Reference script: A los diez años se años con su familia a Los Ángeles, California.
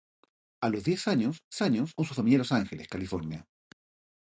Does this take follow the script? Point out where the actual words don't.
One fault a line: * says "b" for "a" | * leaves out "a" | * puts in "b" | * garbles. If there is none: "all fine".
all fine